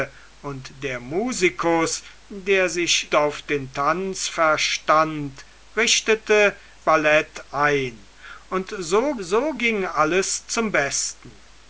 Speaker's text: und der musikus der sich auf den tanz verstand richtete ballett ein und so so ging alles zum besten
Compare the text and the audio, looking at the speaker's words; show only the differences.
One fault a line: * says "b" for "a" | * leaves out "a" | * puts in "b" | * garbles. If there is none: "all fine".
all fine